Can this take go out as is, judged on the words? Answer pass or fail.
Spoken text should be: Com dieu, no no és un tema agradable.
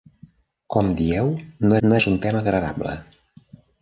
pass